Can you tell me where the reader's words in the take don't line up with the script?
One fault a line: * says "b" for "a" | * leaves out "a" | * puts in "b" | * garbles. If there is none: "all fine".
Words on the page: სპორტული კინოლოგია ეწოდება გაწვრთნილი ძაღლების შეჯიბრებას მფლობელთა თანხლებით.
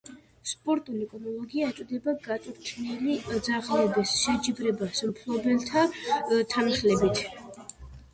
all fine